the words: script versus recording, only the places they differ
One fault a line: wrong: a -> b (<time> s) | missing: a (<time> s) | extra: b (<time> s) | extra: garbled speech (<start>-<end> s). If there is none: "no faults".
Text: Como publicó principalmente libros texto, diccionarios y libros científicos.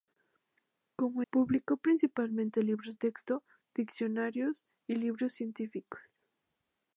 no faults